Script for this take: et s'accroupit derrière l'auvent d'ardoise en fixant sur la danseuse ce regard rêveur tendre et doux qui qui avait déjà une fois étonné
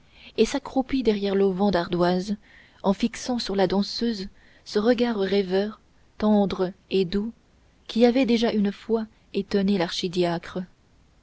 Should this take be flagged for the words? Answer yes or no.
yes